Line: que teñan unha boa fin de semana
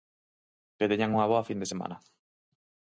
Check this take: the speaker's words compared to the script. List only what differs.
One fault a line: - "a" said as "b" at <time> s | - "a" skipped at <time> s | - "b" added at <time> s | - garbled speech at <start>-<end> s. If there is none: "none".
none